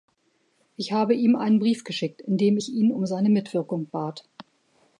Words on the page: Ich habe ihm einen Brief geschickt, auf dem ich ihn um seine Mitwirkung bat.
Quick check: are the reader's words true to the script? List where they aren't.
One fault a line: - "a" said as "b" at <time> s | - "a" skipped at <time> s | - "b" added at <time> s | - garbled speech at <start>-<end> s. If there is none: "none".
- "auf" said as "in" at 2.2 s